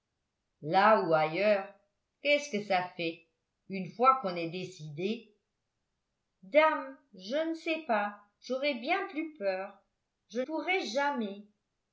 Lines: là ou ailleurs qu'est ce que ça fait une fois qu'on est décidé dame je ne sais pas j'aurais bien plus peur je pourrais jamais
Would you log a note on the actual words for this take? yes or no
no